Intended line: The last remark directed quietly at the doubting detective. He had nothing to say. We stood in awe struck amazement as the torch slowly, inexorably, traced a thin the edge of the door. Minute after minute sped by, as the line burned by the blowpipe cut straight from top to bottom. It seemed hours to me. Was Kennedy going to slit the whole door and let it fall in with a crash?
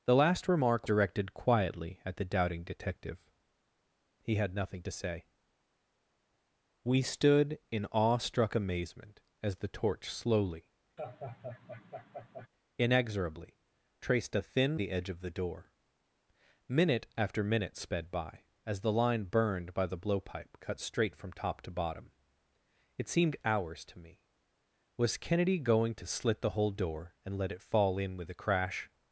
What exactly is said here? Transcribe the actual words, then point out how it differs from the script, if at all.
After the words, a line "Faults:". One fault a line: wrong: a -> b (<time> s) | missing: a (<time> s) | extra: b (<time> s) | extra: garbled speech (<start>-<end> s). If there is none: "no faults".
The last remark directed quietly at the doubting detective. He had nothing to say. We stood in awe struck amazement as the torch slowly, inexorably, traced a thin the edge of the door. Minute after minute sped by, as the line burned by the blowpipe cut straight from top to bottom. It seemed hours to me. Was Kennedy going to slit the whole door and let it fall in with a crash?
Faults:
no faults